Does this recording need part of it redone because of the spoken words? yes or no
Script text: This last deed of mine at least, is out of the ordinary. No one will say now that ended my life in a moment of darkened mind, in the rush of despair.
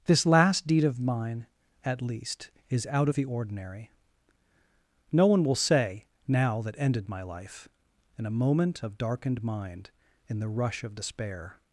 no